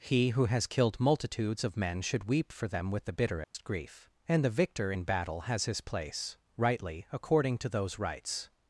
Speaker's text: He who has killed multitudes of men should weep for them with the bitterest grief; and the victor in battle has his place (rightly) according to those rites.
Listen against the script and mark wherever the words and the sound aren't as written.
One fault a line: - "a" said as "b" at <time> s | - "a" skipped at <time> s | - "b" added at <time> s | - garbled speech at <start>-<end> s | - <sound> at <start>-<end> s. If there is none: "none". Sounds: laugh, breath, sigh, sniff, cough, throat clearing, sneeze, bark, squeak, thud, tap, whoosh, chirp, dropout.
- dropout at 3.4-3.5 s